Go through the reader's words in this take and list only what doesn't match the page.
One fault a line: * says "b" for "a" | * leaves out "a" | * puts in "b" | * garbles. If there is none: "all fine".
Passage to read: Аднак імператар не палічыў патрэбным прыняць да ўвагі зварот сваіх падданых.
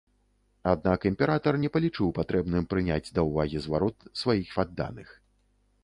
all fine